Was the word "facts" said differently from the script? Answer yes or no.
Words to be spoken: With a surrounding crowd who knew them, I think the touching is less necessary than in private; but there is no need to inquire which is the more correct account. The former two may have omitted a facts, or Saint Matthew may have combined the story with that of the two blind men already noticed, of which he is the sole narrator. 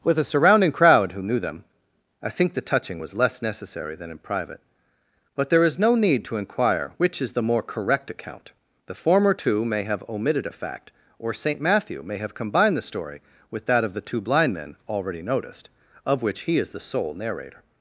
yes